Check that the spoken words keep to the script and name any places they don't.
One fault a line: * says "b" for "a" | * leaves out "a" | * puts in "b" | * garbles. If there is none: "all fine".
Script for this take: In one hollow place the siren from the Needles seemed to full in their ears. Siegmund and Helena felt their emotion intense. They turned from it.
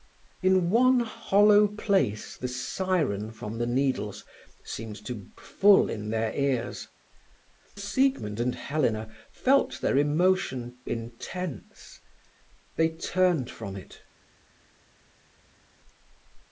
all fine